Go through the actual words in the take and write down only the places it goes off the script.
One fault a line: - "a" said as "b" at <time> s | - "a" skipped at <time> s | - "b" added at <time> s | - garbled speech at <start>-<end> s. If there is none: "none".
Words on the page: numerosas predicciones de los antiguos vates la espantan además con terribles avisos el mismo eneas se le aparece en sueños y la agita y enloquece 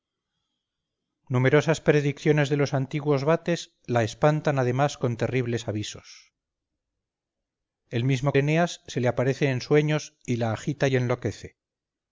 none